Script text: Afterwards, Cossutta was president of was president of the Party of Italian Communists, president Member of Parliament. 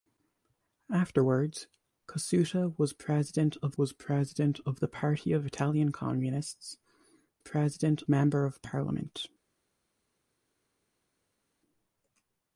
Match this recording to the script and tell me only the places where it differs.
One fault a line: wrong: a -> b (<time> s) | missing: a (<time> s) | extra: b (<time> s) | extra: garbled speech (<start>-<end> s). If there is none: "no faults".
no faults